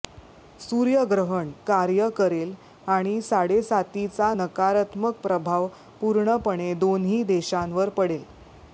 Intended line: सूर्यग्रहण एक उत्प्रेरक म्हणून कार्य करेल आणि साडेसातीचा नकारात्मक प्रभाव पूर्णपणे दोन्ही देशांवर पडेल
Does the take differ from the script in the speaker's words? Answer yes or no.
yes